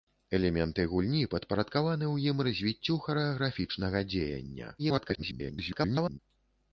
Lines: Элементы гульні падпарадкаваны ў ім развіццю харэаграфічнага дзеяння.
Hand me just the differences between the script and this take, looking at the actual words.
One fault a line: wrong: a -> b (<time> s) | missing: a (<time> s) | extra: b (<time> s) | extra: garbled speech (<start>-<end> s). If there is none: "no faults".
extra: garbled speech (4.8-6.2 s)